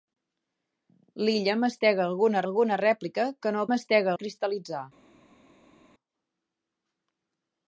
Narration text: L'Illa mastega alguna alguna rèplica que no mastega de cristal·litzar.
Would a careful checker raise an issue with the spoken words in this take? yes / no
no